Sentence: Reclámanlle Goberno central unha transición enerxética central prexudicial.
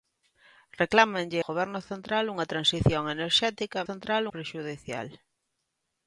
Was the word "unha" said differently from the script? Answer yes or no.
no